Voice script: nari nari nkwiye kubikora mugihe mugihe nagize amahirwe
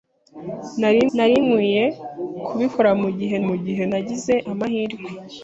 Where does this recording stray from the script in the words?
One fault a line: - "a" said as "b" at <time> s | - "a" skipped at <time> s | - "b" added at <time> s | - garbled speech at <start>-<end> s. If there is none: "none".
none